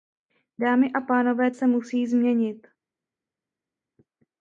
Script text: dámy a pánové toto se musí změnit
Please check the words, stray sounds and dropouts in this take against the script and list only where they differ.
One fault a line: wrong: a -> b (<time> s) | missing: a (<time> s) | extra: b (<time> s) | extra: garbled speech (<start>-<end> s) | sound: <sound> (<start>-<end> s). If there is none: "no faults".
missing: toto (1.5 s)